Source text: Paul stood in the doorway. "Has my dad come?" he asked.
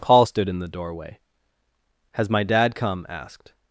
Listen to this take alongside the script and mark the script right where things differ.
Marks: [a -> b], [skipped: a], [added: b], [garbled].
Paul stood in the doorway. "Has my dad come?" [skipped: he] asked.